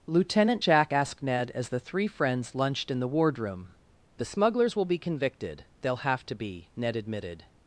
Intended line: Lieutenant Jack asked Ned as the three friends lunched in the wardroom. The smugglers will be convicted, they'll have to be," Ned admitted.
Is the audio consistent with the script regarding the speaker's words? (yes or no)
yes